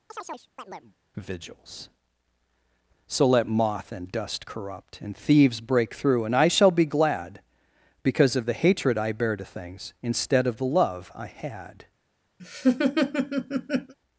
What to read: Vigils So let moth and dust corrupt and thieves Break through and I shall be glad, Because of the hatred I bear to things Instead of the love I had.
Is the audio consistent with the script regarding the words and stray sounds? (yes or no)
no